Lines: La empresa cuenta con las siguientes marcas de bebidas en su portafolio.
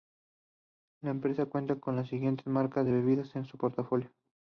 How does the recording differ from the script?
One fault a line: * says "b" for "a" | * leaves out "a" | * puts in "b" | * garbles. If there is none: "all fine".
all fine